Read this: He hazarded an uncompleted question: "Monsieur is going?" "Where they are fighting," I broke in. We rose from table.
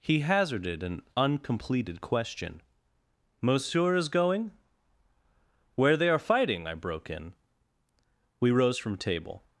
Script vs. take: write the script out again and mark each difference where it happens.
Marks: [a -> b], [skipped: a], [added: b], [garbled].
He hazarded an uncompleted question: "Monsieur is going?" "Where they are fighting," I broke in. We rose from table.